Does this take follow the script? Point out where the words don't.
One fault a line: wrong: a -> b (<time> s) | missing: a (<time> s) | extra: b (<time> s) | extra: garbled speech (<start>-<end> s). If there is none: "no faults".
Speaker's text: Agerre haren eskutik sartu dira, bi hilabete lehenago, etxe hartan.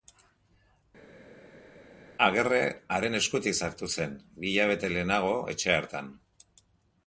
wrong: dira -> zen (4.0 s)